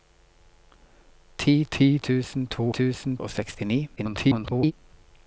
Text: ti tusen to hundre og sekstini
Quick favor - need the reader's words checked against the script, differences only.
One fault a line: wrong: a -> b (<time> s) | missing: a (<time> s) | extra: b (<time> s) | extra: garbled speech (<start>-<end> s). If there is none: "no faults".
extra: ti (1.7 s)
wrong: hundre -> tusen (2.7 s)
extra: garbled speech (4.0-4.7 s)